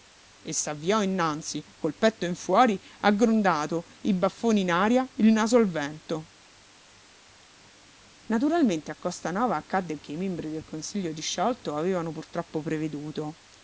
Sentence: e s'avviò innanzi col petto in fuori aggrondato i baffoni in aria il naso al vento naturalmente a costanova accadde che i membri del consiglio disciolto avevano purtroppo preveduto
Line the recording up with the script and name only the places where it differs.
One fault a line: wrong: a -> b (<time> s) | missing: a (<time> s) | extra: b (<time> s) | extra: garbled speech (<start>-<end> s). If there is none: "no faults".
no faults